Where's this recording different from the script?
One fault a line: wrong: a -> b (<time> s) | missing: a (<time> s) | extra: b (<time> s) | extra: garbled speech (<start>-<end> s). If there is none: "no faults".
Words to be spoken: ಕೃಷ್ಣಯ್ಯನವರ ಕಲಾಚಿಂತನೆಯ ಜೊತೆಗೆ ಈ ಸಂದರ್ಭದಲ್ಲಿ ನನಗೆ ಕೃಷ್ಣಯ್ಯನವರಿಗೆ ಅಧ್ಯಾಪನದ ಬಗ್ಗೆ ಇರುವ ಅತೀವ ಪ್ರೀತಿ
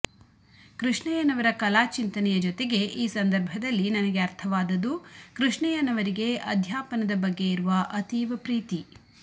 extra: ಅರ್ಥವಾದದ್ದು (4.2 s)